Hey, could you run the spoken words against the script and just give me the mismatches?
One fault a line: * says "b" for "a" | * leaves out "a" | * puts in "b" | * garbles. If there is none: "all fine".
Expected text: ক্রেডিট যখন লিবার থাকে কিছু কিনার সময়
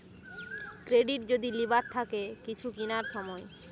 * says "যদি" for "যখন"